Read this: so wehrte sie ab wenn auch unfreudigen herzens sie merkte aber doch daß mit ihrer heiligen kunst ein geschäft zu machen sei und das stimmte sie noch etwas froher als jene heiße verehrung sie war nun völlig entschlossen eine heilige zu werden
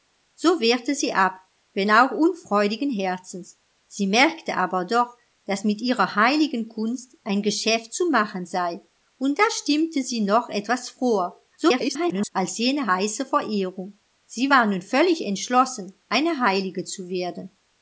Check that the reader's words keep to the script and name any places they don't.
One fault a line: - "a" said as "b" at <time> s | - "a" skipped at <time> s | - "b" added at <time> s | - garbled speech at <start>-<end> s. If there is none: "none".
- garbled speech at 11.6-12.3 s